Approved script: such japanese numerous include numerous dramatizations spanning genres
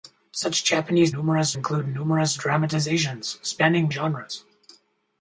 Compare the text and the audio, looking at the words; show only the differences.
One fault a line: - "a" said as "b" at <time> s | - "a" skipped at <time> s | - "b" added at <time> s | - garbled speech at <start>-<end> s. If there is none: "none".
none